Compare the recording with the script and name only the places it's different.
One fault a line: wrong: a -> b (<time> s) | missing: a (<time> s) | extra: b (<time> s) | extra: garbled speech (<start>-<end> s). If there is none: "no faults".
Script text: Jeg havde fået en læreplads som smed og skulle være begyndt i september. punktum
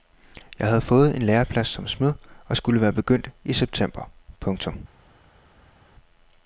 no faults